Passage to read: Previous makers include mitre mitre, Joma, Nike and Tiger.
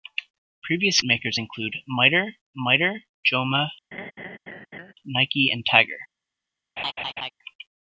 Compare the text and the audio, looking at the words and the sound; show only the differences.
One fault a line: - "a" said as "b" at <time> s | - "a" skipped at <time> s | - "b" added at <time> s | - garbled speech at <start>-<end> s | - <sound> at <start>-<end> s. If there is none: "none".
- laugh at 3.9-4.9 s
- laugh at 6.8-7.3 s